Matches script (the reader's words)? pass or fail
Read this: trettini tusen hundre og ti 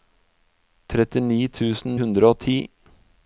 pass